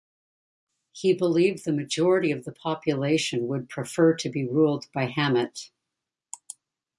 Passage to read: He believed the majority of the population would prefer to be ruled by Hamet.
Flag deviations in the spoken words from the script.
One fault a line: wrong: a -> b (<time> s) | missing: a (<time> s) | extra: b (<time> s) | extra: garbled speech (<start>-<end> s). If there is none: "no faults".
no faults